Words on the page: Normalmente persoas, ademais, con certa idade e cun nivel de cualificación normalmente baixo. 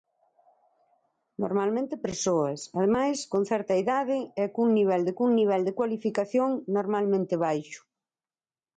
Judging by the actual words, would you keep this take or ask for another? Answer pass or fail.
fail